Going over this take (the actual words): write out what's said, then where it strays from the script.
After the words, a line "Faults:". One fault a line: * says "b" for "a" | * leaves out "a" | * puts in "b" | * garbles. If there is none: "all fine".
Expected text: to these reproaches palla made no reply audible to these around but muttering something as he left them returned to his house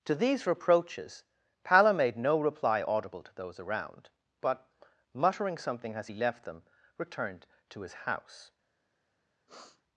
to these reproaches palla made no reply audible to those around but muttering something as he left them returned to his house
Faults:
* says "those" for "these"